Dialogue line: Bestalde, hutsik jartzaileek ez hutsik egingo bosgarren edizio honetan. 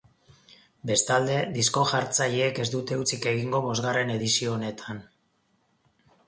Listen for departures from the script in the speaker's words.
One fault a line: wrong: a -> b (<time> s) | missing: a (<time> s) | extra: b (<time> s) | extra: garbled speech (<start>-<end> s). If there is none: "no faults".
wrong: hutsik -> disko (1.6 s)
extra: dute (2.8 s)